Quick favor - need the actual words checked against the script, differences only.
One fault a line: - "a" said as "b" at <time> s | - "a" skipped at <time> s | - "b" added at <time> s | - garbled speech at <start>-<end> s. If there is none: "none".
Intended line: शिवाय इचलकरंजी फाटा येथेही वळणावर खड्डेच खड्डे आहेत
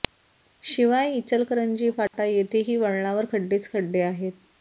none